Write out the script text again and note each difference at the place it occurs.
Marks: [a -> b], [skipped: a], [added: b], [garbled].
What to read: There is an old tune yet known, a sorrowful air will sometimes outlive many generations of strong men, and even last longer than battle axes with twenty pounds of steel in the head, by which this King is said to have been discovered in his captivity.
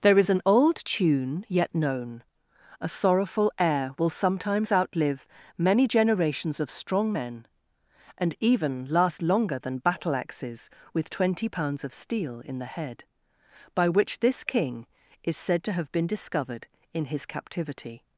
There is an old tune yet known, a sorrowful air will sometimes outlive many generations of strong men, and even last longer than battle axes with twenty pounds of steel in the head, by which this King is said to have been discovered in his captivity.